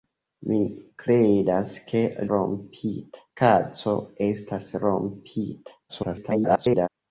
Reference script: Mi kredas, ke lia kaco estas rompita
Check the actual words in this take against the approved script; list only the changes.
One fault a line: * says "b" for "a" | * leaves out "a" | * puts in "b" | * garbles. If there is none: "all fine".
* says "rompita" for "lia"
* garbles